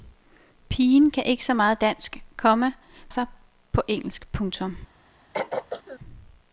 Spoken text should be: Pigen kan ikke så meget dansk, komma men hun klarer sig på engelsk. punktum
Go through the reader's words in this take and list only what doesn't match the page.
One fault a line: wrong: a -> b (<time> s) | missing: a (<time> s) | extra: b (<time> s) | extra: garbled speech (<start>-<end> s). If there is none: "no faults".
missing: men hun klarer (2.7 s)